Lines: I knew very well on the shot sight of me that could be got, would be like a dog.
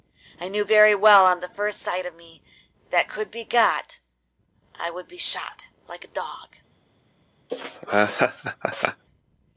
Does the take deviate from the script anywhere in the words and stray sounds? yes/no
yes